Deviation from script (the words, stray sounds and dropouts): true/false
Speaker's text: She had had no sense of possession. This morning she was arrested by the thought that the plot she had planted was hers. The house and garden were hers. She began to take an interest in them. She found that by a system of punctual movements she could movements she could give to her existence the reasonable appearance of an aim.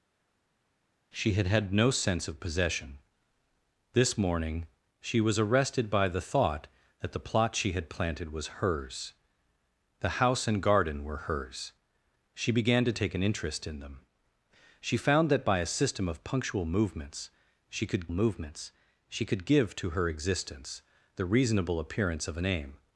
false